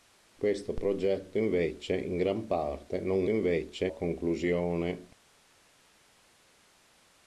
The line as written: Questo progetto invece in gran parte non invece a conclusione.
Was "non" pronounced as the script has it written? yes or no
yes